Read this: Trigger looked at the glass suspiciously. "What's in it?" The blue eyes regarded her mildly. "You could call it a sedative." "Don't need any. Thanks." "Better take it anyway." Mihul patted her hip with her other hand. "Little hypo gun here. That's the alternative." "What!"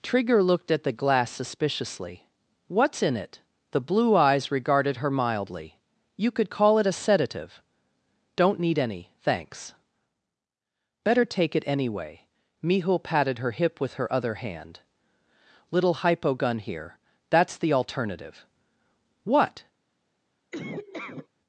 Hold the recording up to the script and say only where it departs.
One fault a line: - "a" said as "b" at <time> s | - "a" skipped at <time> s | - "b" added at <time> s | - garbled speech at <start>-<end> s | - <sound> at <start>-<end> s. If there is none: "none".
- laugh at 20.5-21.3 s